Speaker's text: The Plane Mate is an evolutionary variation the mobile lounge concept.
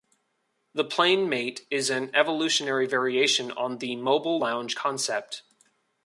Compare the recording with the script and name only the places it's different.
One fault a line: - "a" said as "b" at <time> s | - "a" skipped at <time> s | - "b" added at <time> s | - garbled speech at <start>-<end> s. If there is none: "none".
- "on" added at 3.5 s